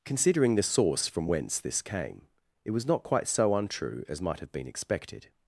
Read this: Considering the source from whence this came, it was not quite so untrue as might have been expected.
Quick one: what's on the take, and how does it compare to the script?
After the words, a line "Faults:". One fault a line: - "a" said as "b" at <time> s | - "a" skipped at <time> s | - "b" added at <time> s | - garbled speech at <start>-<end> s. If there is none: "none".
Considering the source from whence this came, it was not quite so untrue as might have been expected.
Faults:
none